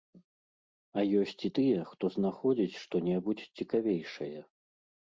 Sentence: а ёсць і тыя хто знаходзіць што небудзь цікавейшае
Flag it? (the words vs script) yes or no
no